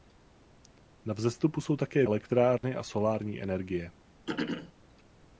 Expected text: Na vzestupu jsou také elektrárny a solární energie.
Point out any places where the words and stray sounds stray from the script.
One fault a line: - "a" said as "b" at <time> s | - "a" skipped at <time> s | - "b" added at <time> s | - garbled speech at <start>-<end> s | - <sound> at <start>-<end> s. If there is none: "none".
- dropout at 2.6-2.6 s
- throat clearing at 4.3-4.7 s